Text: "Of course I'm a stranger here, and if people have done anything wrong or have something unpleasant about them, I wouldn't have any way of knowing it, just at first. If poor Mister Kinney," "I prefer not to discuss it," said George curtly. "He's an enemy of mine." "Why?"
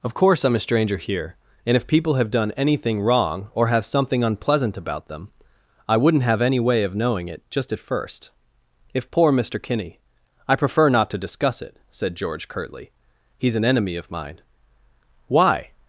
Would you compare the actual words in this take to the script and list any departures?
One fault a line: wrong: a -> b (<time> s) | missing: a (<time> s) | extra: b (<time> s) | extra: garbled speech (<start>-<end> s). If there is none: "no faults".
no faults